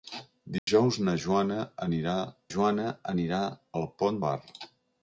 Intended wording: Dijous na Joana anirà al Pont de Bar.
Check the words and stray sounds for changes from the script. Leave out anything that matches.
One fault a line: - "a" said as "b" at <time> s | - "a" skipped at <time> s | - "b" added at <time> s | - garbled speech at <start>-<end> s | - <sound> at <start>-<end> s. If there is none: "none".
- dropout at 0.6-0.7 s
- "Joana anirà" added at 2.5 s
- "de" skipped at 4.2 s